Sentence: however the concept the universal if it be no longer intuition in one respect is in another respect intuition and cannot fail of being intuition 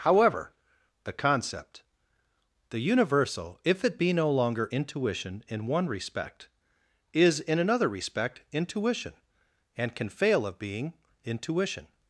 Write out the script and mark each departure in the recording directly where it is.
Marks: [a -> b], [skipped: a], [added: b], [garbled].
however the concept the universal if it be no longer intuition in one respect is in another respect intuition and [cannot -> can] fail of being intuition